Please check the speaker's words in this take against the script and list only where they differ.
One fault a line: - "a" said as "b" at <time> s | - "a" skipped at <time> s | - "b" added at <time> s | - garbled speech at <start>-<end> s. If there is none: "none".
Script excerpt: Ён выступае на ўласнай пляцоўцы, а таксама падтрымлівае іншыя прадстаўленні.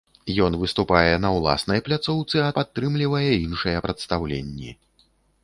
- "таксама" skipped at 2.5 s